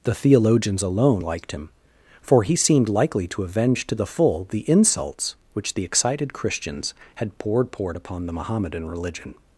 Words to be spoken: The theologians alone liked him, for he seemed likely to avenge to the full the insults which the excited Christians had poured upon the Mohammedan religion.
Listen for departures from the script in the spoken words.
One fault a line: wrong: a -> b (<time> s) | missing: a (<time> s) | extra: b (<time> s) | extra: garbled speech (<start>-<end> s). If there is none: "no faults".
extra: poured (7.7 s)